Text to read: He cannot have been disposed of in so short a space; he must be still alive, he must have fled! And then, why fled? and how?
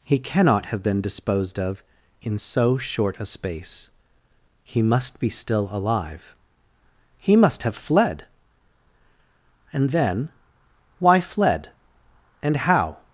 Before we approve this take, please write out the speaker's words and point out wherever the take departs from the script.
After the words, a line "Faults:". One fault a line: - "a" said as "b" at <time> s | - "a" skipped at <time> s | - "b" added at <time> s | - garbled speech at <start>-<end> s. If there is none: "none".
He cannot have been disposed of in so short a space; he must be still alive, he must have fled! And then, why fled? and how?
Faults:
none